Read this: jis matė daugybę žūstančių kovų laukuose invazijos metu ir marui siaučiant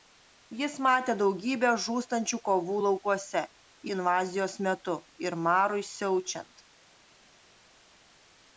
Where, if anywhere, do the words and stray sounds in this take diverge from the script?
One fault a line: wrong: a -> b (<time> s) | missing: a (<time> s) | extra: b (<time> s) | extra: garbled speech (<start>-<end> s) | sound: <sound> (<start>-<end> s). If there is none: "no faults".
no faults